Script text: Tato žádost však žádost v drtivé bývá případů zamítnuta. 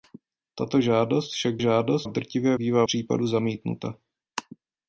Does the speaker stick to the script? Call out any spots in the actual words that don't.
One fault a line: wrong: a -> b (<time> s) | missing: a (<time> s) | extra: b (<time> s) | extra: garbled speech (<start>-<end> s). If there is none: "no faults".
no faults